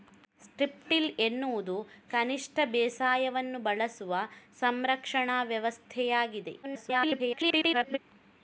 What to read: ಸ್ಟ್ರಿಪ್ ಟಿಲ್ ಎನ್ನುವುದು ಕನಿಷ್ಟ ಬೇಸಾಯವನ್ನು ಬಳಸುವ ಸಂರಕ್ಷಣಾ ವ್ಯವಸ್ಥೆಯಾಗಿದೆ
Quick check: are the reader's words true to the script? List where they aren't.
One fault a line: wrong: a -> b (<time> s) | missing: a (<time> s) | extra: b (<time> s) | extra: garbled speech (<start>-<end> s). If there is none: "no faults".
extra: garbled speech (6.6-8.0 s)